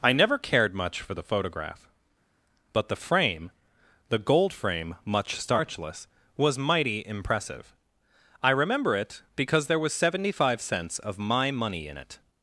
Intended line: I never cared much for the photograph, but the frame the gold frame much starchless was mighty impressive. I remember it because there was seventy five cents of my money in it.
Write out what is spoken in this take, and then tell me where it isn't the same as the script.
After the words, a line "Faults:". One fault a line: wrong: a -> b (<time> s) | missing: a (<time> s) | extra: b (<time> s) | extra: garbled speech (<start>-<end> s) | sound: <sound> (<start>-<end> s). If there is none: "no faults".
I never cared much for the photograph, but the frame the gold frame much starchless was mighty impressive. I remember it because there was seventy five cents of my money in it.
Faults:
no faults